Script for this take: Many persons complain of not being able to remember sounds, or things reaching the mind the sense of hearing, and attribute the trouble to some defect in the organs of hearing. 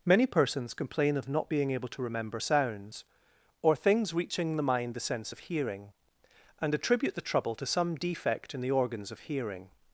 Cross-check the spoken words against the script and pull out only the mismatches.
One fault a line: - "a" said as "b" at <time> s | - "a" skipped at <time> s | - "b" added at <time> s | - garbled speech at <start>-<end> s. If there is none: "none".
none